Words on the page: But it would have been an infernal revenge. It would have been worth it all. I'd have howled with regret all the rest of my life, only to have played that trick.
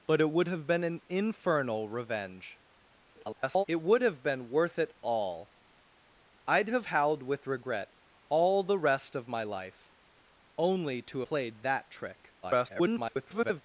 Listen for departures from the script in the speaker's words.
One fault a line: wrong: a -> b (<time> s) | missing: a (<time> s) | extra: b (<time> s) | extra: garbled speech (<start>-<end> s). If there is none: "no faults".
extra: garbled speech (3.2-3.6 s)
missing: have (11.2 s)
extra: garbled speech (12.4-13.6 s)